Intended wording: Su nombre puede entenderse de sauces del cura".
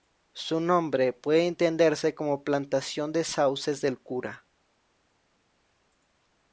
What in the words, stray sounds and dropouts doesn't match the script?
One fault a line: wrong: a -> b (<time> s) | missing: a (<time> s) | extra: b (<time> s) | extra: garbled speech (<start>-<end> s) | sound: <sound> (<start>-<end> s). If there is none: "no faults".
extra: como plantación (2.1 s)